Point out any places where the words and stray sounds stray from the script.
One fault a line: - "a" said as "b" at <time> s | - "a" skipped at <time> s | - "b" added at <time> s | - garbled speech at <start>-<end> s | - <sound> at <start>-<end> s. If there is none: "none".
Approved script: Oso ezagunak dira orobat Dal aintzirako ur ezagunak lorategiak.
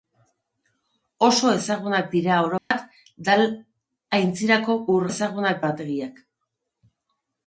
- dropout at 2.6-2.7 s